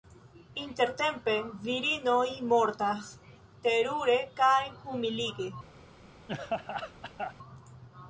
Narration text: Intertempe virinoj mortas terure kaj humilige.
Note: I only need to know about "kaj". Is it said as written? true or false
true